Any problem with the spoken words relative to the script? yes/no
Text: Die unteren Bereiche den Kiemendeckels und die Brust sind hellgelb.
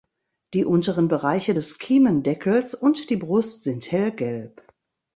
yes